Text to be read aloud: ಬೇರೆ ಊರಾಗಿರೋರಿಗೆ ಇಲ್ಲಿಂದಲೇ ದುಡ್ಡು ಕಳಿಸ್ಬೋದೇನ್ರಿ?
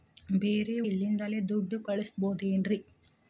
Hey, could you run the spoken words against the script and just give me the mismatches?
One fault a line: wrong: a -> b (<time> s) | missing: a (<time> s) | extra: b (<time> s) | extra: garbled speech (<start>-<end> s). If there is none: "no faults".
missing: ಊರಾಗಿರೋರಿಗೆ (0.8 s)